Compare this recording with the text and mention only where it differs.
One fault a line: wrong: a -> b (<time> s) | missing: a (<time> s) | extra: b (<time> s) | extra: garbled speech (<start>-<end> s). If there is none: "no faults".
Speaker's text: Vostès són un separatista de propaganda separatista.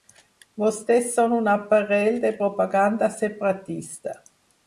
wrong: separatista -> aparell (1.5 s)